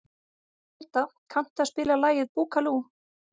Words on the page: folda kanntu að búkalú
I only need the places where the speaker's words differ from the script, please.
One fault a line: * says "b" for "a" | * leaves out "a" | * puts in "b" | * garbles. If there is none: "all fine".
* puts in "spila lagið"